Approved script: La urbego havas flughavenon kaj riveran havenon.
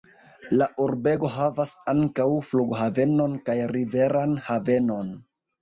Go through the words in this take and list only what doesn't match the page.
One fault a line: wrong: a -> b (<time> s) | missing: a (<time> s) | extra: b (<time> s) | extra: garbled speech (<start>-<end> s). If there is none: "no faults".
extra: ankaŭ (1.9 s)